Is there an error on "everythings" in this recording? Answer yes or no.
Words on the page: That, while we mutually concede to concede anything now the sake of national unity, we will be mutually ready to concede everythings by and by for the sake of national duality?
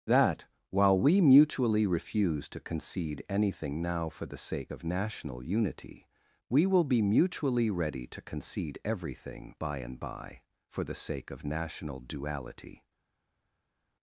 yes